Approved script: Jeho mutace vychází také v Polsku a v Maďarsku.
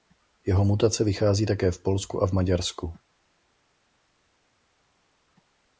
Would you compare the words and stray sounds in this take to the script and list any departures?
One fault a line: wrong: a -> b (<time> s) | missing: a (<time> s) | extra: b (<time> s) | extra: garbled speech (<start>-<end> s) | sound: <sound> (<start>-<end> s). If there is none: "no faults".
no faults